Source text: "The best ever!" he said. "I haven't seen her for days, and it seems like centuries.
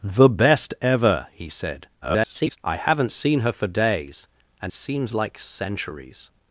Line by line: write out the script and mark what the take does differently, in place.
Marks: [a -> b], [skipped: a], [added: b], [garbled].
"The best ever!" he said. [garbled] "I haven't seen her for days, and [skipped: it] seems like centuries.